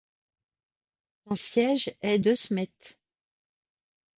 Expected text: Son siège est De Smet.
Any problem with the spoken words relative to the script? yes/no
no